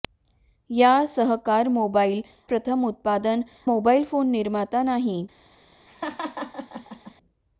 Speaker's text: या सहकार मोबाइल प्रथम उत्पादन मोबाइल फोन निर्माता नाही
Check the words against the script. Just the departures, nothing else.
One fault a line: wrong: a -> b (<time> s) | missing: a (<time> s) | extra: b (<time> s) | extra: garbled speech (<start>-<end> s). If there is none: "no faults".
no faults